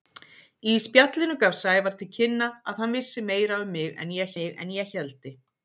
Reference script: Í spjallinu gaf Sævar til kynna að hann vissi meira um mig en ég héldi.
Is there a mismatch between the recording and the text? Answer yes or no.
yes